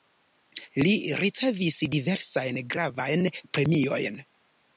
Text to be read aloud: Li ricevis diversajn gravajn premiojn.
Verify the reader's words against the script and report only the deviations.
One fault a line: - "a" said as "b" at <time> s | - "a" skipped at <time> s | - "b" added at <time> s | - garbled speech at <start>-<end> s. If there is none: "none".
none